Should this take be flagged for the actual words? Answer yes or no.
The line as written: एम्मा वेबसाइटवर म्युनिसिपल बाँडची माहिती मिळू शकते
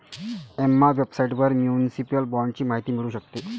no